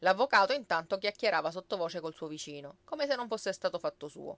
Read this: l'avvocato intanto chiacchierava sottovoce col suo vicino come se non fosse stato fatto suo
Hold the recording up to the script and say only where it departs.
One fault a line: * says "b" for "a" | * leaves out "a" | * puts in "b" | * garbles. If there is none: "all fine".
all fine